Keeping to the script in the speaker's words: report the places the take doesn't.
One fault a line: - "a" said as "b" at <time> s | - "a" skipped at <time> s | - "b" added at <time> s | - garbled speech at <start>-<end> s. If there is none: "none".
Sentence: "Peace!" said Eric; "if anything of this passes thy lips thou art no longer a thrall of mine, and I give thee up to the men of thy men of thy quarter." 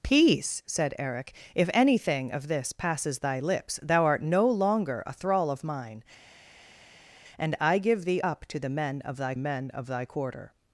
none